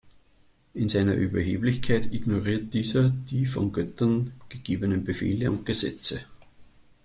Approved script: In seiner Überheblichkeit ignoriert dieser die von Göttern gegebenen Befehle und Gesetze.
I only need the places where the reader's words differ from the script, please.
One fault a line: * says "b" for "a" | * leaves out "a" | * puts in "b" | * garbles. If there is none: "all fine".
all fine